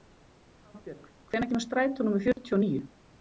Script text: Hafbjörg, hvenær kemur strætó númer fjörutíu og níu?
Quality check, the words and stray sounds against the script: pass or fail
fail